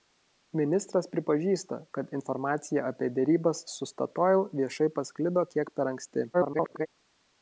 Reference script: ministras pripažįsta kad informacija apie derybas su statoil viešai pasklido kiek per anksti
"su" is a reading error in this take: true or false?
false